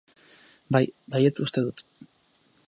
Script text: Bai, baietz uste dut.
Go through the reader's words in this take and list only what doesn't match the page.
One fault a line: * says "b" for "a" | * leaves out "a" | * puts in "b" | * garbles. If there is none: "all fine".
all fine